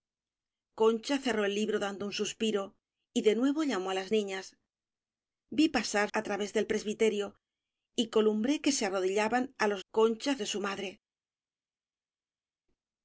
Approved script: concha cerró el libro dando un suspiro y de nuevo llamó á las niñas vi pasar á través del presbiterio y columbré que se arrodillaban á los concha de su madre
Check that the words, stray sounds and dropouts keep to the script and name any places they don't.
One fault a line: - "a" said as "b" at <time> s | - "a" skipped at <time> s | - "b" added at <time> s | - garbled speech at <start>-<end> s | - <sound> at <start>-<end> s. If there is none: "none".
none